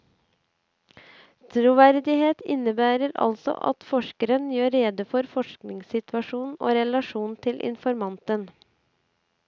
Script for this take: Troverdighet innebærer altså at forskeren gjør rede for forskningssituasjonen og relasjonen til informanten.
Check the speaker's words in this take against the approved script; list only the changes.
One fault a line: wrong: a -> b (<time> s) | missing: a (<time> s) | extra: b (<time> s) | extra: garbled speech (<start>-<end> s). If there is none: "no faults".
no faults